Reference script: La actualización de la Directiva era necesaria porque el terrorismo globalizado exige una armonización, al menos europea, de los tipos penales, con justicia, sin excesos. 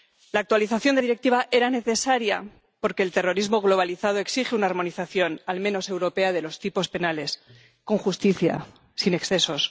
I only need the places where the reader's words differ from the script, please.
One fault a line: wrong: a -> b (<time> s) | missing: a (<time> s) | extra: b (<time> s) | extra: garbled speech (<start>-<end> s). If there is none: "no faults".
missing: la (1.0 s)